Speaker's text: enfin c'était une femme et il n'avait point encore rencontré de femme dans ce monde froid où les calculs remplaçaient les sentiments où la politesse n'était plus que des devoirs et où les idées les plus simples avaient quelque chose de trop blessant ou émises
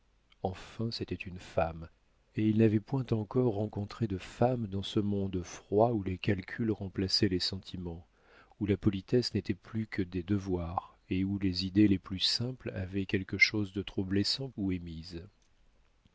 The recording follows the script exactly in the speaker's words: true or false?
true